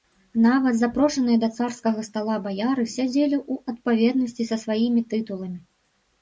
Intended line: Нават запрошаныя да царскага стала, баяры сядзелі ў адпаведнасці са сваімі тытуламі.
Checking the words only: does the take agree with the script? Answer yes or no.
yes